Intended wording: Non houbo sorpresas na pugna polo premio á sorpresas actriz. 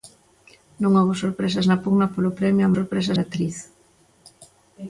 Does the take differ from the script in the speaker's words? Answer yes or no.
no